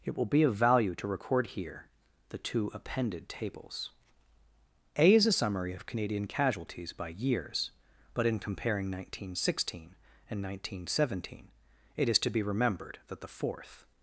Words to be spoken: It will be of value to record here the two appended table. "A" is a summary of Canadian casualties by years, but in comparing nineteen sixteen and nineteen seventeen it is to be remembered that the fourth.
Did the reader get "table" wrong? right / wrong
wrong